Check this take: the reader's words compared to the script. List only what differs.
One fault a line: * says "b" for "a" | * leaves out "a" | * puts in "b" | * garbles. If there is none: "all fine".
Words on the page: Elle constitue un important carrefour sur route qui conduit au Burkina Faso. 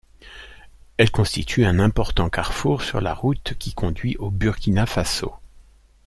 * puts in "la"